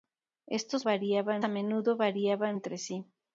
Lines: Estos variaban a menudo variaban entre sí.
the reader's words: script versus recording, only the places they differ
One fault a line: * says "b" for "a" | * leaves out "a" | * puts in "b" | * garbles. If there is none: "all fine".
all fine